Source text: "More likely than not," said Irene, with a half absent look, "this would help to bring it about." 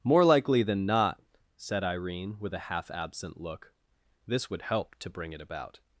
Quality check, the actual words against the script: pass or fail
pass